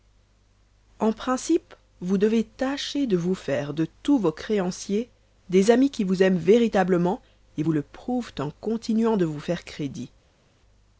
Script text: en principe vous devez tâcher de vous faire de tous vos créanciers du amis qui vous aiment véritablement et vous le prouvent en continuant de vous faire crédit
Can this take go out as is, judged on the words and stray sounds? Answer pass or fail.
fail